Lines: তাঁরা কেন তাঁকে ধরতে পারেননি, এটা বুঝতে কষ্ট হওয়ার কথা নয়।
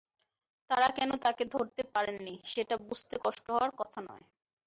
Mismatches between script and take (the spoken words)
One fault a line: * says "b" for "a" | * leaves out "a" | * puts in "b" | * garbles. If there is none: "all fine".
* says "সেটা" for "এটা"